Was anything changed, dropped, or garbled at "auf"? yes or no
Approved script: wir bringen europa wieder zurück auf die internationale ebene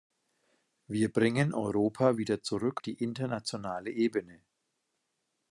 yes